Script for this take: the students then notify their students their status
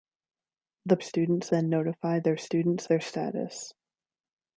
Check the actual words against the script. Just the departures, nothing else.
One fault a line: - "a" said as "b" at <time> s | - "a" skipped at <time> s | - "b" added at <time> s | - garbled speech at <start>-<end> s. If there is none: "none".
none